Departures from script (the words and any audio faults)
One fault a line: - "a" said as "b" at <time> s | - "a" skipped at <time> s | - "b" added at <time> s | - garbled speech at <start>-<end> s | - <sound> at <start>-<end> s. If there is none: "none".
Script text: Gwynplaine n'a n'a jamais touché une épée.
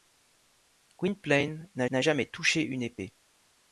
none